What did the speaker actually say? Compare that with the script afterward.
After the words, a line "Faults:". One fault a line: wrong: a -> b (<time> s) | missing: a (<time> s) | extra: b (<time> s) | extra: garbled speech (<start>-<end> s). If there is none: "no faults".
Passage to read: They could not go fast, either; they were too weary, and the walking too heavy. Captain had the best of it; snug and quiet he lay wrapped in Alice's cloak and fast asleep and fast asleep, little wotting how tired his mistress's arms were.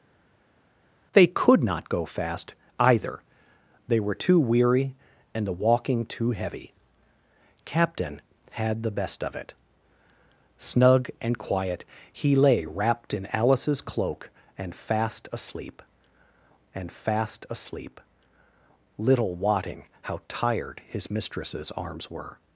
They could not go fast, either; they were too weary, and the walking too heavy. Captain had the best of it; snug and quiet he lay wrapped in Alice's cloak and fast asleep and fast asleep, little wotting how tired his mistress's arms were.
Faults:
no faults